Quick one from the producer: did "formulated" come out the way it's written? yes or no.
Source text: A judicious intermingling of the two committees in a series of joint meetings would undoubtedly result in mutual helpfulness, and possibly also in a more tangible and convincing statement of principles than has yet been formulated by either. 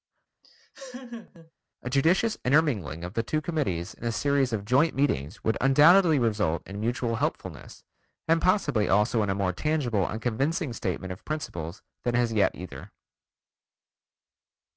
no